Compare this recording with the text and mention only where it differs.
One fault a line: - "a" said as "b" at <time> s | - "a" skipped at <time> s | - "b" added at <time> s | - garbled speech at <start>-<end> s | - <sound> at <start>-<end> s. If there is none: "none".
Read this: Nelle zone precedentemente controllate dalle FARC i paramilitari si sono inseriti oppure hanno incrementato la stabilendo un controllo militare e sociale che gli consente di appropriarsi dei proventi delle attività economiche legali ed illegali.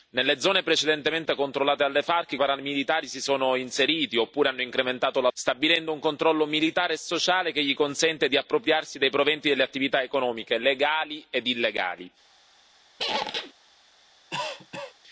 - squeak at 13.0-13.5 s
- cough at 14.3-14.9 s